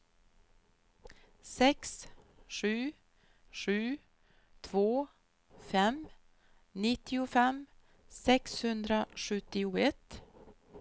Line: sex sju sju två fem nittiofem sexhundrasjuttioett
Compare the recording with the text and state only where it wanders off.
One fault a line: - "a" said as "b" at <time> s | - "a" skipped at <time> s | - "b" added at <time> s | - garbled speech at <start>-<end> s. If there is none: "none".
none